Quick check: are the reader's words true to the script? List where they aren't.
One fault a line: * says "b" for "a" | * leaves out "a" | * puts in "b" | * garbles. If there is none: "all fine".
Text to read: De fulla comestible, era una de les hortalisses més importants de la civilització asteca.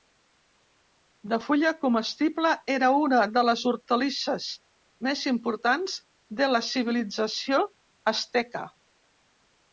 all fine